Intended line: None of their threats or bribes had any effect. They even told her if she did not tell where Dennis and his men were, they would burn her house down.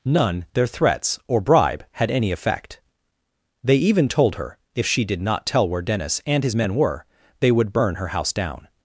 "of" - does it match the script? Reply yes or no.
no